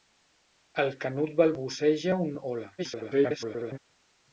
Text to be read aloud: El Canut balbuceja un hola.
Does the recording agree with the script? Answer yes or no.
no